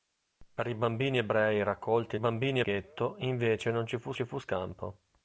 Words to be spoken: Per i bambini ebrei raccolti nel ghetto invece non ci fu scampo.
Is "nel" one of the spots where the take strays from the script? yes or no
yes